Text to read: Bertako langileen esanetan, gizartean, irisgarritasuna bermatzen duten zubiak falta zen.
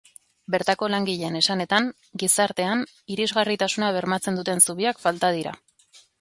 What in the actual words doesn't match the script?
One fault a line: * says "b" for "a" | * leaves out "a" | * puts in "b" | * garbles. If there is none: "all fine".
* says "dira" for "zen"